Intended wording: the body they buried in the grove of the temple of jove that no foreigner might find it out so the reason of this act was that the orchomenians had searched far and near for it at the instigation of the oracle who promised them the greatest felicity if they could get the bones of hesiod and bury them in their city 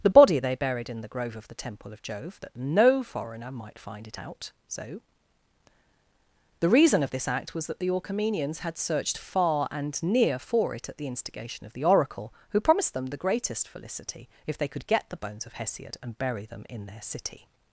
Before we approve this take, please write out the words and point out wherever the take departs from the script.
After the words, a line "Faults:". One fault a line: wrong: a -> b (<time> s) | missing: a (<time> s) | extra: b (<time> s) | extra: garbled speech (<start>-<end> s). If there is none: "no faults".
the body they buried in the grove of the temple of jove that no foreigner might find it out so the reason of this act was that the orchomenians had searched far and near for it at the instigation of the oracle who promised them the greatest felicity if they could get the bones of hesiod and bury them in their city
Faults:
no faults